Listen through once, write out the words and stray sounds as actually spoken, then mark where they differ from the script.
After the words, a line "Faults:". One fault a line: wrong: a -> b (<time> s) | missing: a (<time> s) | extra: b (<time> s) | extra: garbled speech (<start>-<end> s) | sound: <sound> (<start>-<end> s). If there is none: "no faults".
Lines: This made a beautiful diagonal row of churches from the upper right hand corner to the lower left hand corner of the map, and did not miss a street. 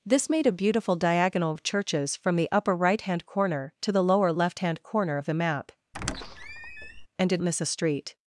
This made a beautiful diagonal of churches from the upper right hand corner to the lower left hand corner of the map, and did miss a street.
Faults:
missing: row (1.5 s)
sound: squeak (5.9-7.1 s)
missing: not (7.4 s)